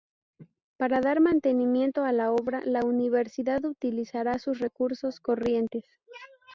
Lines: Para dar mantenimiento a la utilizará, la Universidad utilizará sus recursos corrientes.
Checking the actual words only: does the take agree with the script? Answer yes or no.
no